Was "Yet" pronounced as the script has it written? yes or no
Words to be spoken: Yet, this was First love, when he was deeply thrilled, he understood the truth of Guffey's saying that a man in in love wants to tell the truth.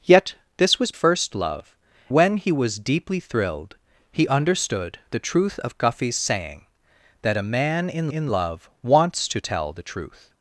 yes